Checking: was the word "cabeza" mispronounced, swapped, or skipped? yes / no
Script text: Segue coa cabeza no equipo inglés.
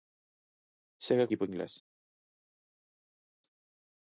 yes